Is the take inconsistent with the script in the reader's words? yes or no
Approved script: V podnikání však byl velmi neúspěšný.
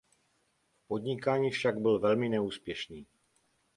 no